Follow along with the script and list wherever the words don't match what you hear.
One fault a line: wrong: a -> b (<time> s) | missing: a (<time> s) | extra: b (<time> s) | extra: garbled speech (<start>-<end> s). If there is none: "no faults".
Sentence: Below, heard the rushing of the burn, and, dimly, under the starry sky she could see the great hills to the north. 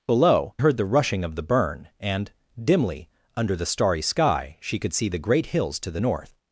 no faults